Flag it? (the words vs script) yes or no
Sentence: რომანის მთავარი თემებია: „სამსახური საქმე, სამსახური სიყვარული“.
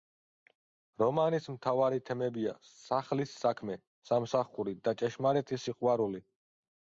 yes